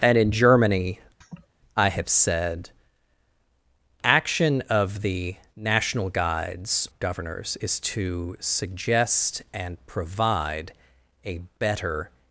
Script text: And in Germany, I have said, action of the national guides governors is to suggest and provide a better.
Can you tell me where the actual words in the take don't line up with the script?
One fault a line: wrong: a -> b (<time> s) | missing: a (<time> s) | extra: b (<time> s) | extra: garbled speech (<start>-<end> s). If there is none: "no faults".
no faults